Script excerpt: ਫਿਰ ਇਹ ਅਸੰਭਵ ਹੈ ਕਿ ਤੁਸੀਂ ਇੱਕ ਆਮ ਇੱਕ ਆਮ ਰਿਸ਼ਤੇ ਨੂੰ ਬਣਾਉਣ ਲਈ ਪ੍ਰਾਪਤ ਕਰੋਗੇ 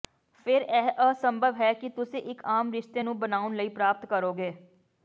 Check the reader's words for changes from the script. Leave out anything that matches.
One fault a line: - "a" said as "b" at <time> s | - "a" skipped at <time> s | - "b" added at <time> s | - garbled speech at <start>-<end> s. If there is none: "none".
- "ਇੱਕ ਆਮ" skipped at 2.7 s